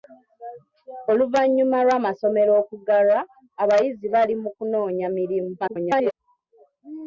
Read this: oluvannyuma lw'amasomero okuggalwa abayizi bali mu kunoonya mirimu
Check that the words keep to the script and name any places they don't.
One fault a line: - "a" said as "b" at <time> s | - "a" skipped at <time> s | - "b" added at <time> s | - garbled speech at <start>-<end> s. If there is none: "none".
- garbled speech at 5.6-6.1 s